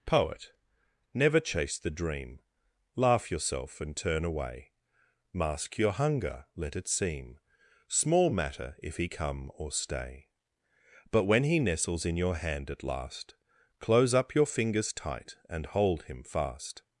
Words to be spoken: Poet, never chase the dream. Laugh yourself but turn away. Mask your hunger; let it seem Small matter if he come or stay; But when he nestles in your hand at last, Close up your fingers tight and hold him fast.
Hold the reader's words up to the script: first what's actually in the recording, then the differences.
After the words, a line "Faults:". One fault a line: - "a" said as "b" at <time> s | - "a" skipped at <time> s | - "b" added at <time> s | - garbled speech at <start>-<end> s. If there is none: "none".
Poet, never chase the dream. Laugh yourself and turn away. Mask your hunger; let it seem Small matter if he come or stay; But when he nestles in your hand at last, Close up your fingers tight and hold him fast.
Faults:
- "but" said as "and" at 3.8 s